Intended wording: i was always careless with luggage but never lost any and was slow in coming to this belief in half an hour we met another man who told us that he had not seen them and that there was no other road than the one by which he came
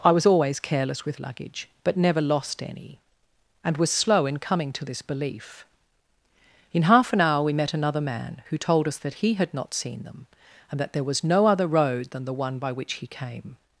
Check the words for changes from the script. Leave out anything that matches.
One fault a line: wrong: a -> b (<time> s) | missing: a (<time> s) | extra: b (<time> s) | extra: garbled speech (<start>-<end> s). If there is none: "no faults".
no faults